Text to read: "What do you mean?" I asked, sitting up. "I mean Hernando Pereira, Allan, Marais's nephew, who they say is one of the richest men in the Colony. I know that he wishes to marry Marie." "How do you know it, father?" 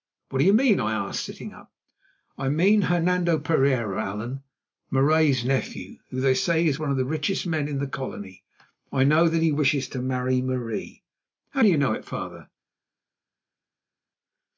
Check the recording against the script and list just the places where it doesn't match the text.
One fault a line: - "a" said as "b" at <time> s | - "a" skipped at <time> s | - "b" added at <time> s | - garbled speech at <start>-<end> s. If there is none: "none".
none